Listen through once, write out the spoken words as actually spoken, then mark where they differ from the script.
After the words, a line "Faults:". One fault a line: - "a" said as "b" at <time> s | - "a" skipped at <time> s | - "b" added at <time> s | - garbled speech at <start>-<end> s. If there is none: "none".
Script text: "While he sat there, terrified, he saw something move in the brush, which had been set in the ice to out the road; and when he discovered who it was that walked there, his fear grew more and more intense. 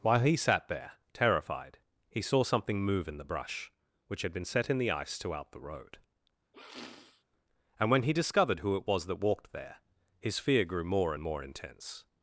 "While he sat there, terrified, he saw something move in the brush, which had been set in the ice to out the road; and when he discovered who it was that walked there, his fear grew more and more intense.
Faults:
none